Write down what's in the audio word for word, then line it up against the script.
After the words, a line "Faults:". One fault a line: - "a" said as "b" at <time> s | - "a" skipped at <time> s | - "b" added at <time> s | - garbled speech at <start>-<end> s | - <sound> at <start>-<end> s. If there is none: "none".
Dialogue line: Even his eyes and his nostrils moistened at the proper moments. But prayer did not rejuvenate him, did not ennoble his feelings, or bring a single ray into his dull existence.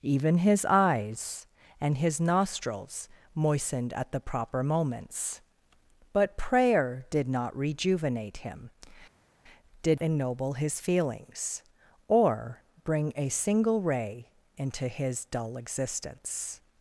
Even his eyes and his nostrils moistened at the proper moments. But prayer did not rejuvenate him, did ennoble his feelings, or bring a single ray into his dull existence.
Faults:
- "not" skipped at 10.0 s